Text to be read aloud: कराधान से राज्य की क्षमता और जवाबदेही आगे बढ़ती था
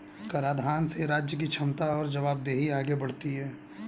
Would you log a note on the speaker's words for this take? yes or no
yes